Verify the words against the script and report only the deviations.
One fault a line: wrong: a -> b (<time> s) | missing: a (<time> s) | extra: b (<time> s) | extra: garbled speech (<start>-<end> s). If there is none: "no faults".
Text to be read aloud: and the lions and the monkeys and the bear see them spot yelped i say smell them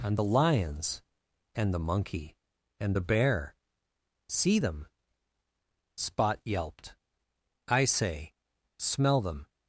wrong: monkeys -> monkey (1.8 s)